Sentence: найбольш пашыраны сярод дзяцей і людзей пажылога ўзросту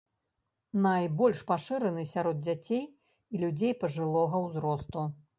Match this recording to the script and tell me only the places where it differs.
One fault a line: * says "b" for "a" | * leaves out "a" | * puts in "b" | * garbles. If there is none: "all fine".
all fine